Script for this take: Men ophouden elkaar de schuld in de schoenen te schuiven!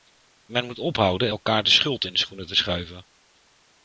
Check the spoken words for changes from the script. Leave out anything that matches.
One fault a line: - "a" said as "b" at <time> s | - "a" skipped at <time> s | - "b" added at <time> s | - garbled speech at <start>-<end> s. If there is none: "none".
- "moet" added at 0.7 s